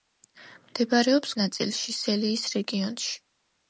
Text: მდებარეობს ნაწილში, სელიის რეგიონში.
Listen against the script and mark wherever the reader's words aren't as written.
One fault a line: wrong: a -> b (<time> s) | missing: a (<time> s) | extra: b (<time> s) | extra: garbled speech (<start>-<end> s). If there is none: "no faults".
no faults